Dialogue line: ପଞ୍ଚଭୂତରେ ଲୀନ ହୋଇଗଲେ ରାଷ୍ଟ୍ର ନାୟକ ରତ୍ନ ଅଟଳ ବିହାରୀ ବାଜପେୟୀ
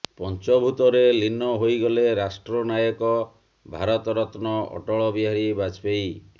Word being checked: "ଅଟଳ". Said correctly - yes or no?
yes